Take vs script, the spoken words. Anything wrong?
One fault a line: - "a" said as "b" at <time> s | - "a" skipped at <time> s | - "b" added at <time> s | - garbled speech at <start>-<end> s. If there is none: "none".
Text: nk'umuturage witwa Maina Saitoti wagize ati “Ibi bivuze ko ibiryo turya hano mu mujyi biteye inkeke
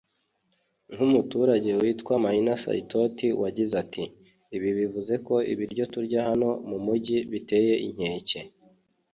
none